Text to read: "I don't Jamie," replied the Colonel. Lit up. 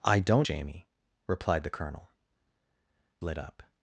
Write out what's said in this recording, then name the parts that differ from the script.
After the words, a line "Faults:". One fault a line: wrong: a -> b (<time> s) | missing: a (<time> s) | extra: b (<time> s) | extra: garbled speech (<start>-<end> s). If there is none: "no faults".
"I don't Jamie," replied the Colonel. Lit up.
Faults:
no faults